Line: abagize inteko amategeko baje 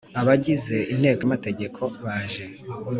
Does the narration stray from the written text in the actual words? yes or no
no